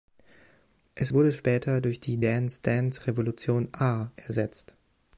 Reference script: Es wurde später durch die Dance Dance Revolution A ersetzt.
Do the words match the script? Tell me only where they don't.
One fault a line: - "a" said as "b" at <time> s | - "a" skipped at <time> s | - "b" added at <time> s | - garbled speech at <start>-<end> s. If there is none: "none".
none